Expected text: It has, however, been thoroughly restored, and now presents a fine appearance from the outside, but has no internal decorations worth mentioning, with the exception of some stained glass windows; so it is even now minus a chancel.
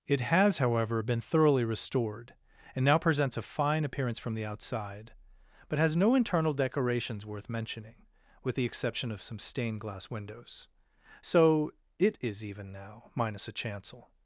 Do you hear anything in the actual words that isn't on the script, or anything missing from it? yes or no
no